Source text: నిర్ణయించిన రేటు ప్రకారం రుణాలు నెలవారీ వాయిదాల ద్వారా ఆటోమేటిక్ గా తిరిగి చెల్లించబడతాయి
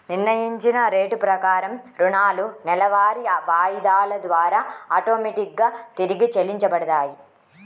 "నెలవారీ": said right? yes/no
yes